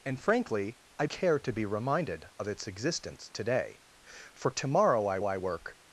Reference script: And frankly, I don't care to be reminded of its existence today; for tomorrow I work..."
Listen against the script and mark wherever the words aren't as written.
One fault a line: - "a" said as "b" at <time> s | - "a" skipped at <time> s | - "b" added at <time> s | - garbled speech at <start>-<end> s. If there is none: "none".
- "don't" skipped at 1.1 s
- "I" added at 5.2 s